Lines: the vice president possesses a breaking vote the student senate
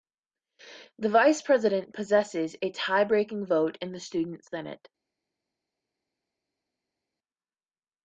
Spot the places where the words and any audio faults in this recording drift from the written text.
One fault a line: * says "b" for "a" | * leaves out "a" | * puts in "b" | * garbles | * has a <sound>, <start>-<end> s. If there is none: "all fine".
* puts in "tie"
* puts in "in"